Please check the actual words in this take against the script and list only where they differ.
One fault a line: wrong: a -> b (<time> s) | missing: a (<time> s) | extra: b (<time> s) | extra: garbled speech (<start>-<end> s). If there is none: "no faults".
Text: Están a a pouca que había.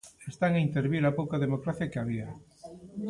extra: intervir (0.7 s)
extra: democracia (1.5 s)